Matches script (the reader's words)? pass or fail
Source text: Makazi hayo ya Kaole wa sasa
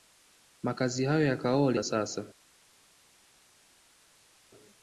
pass